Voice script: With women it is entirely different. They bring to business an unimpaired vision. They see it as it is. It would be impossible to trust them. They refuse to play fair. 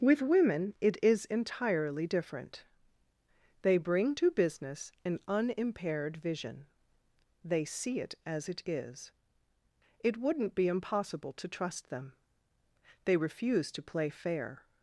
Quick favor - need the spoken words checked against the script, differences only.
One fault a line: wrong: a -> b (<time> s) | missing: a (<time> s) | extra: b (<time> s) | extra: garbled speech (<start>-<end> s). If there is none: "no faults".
wrong: would -> wouldn't (10.2 s)